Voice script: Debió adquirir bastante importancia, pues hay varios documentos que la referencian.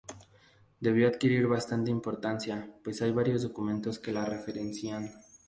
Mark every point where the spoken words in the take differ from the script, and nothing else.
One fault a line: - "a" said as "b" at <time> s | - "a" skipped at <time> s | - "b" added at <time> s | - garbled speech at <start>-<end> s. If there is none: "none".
none